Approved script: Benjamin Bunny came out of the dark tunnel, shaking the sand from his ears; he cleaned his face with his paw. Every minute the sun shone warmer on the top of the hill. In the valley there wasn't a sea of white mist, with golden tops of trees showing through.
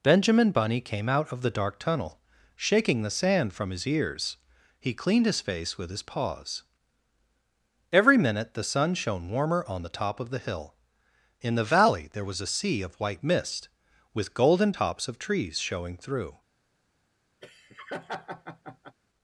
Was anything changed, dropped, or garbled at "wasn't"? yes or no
yes